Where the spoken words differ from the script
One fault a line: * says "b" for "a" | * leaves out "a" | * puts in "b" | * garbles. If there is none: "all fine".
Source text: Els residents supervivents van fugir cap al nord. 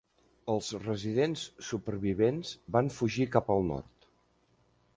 all fine